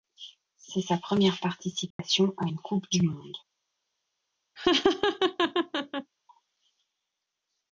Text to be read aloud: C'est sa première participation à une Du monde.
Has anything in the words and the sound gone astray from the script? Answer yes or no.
yes